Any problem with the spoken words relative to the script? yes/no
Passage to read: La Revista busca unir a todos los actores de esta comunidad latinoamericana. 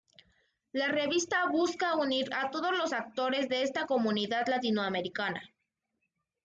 no